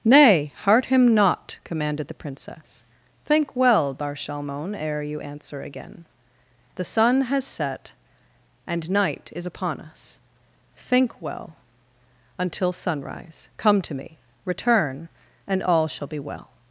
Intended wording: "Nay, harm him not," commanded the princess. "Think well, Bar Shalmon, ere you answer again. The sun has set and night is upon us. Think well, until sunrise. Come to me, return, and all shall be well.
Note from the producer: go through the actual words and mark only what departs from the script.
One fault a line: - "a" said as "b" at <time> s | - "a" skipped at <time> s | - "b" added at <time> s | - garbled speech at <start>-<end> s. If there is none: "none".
- "harm" said as "heart" at 0.6 s